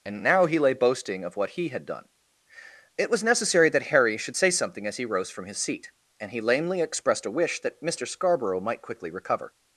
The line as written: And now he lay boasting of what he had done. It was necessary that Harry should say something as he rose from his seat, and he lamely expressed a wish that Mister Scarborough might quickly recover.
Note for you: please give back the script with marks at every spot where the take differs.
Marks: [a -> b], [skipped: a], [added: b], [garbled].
And now he lay boasting of what he had done. It was necessary that Harry should say something as he rose from his seat, and he lamely expressed a wish that Mister Scarborough might quickly recover.